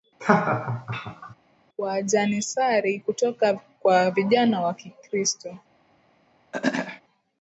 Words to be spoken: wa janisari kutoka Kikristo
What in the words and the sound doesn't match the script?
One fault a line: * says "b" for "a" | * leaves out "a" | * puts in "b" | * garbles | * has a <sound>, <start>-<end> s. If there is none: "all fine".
* has a laugh, 0.2-1.3 s
* puts in "kwa vijana wa"
* has a throat clearing, 6.5-7.0 s